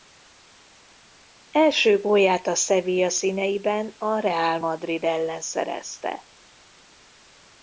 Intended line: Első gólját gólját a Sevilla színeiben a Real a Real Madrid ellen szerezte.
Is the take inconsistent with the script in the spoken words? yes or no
yes